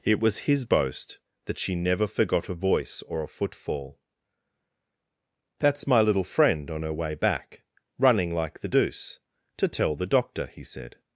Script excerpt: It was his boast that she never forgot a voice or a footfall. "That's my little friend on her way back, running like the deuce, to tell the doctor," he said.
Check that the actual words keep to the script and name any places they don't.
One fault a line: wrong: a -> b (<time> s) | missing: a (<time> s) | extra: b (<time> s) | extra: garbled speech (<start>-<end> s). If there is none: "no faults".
no faults